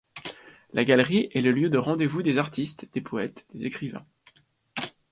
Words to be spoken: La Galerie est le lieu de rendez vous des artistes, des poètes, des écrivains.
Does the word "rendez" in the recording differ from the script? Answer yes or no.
no